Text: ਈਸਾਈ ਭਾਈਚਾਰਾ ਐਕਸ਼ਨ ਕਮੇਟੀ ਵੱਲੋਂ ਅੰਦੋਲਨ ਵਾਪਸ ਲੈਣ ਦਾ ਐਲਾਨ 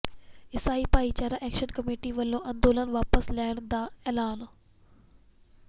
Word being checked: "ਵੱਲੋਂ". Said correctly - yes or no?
yes